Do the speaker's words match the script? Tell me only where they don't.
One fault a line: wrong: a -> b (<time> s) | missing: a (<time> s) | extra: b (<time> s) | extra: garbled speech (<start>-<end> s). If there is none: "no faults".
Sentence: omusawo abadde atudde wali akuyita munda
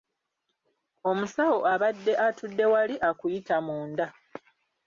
no faults